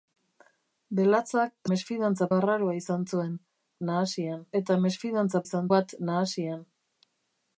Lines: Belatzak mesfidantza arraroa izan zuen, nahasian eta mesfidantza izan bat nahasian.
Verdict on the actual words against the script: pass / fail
pass